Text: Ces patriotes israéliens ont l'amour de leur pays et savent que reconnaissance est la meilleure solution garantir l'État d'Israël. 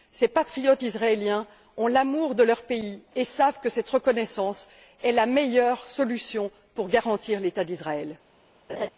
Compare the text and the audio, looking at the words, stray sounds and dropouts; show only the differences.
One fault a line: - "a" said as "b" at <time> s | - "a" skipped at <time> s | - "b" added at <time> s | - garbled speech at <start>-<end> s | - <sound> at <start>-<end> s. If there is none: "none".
- "cette" added at 3.7 s
- "pour" added at 6.7 s
- laugh at 8.7-8.9 s